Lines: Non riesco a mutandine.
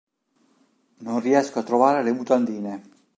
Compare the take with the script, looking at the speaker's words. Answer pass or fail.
fail